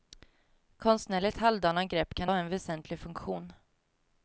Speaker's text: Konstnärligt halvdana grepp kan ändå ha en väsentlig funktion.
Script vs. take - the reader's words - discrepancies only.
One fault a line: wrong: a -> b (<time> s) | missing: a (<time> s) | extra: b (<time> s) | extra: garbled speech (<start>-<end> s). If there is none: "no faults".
missing: ändå (2.3 s)